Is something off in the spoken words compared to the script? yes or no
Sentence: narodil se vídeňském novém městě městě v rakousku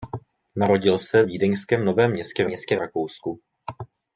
no